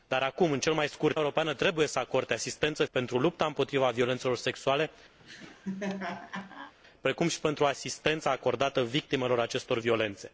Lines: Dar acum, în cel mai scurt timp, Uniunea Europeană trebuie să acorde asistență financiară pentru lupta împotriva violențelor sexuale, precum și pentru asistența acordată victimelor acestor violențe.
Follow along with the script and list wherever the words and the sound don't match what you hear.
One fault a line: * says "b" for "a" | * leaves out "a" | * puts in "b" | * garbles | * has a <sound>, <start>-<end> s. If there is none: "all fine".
* leaves out "timp Uniunea"
* leaves out "financiară"
* has a laugh, 5.2-6.7 s